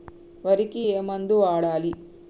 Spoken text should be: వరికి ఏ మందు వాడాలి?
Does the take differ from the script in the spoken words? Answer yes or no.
no